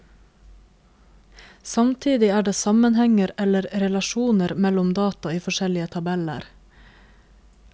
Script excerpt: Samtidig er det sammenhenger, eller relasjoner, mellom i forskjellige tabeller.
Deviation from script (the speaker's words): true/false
true